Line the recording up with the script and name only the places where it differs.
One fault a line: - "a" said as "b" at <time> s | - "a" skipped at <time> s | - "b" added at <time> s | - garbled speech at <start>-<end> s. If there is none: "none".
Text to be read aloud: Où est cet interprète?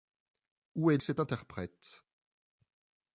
none